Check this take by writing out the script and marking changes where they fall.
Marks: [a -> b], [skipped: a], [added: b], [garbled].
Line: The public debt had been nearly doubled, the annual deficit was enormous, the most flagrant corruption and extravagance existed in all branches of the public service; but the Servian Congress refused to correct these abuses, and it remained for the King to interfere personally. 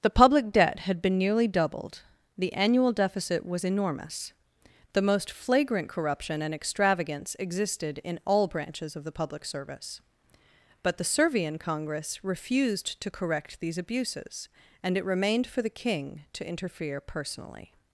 The public debt had been nearly doubled, the annual deficit was enormous, the most flagrant corruption and extravagance existed in all branches of the public service; but the Servian Congress refused to correct these abuses, and it remained for the King to interfere personally.